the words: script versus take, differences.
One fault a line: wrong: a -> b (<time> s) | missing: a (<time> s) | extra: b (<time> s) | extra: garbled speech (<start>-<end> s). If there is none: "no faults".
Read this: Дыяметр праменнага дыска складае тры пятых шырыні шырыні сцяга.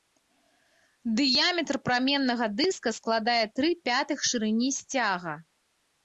missing: шырыні (4.7 s)